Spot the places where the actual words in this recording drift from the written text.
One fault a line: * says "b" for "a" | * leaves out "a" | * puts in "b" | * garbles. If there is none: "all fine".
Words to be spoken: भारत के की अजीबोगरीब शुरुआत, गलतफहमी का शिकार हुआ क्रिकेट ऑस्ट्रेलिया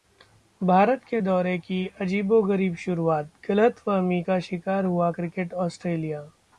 * puts in "दौरे"